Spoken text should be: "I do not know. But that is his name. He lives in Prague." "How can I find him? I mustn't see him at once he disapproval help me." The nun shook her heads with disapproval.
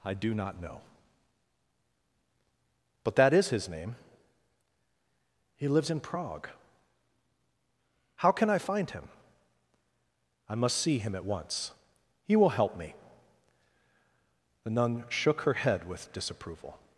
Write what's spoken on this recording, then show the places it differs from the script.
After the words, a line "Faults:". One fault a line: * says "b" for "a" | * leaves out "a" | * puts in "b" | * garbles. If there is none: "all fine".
"I do not know. But that is his name. He lives in Prague." "How can I find him? I must see him at once he will help me." The nun shook her head with disapproval.
Faults:
* says "must" for "mustn't"
* says "will" for "disapproval"
* says "head" for "heads"